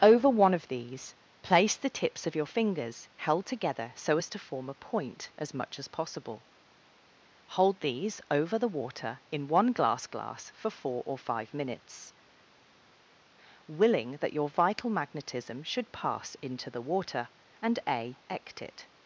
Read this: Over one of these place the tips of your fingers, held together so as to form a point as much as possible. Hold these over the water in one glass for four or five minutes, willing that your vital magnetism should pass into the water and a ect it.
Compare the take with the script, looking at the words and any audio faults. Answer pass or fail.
fail